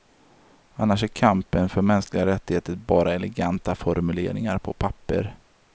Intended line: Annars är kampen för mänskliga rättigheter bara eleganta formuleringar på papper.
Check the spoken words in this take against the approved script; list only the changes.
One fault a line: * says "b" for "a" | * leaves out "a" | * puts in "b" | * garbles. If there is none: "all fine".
all fine